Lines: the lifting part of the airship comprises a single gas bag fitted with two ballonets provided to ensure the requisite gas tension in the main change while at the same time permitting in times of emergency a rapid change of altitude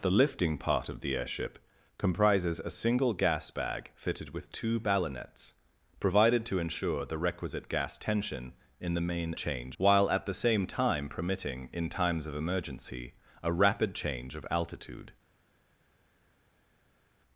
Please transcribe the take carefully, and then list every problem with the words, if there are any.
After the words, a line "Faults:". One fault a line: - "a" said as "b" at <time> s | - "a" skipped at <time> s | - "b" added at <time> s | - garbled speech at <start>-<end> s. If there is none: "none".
the lifting part of the airship comprises a single gas bag fitted with two ballonets provided to ensure the requisite gas tension in the main change while at the same time permitting in times of emergency a rapid change of altitude
Faults:
none